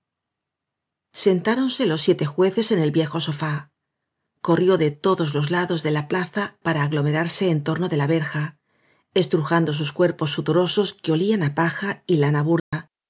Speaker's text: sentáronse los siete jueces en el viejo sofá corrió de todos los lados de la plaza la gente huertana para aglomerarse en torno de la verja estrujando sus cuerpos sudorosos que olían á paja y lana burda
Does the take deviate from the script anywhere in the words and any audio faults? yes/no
yes